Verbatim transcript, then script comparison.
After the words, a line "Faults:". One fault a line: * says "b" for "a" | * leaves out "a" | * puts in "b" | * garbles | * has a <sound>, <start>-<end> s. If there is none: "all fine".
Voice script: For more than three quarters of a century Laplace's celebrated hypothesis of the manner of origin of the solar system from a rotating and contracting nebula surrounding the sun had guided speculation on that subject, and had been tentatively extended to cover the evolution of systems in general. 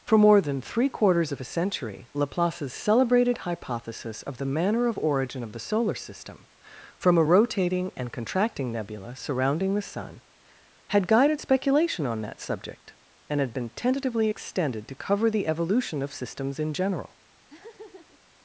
For more than three quarters of a century Laplace's celebrated hypothesis of the manner of origin of the solar system from a rotating and contracting nebula surrounding the sun had guided speculation on that subject, and had been tentatively extended to cover the evolution of systems in general.
Faults:
* has a laugh, 17.5-18.2 s